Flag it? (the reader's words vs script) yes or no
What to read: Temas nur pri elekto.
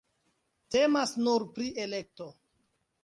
no